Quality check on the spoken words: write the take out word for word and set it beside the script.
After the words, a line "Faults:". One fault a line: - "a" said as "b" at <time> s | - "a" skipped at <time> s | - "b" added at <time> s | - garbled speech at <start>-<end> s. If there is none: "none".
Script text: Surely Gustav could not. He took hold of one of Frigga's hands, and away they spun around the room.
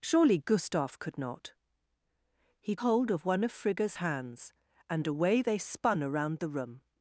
Surely Gustav could not. He hold of one of Frigga's hands, and away they spun around the room.
Faults:
- "took" skipped at 2.8 s